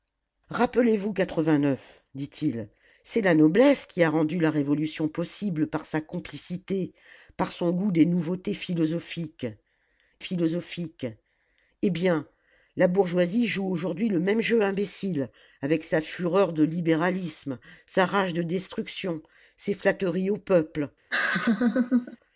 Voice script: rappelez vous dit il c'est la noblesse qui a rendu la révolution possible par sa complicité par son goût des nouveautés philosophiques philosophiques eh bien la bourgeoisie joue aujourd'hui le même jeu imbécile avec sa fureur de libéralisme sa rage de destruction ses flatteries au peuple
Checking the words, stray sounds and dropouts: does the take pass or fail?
fail